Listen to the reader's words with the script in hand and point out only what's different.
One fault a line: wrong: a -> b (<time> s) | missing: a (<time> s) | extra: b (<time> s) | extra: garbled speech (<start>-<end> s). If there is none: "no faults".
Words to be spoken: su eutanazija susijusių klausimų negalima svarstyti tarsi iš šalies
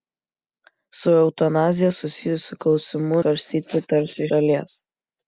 missing: negalima (3.2 s)
missing: iš (4.3 s)